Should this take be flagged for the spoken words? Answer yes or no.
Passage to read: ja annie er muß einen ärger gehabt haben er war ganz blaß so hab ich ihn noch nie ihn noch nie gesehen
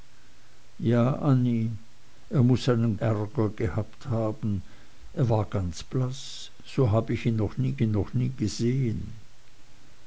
no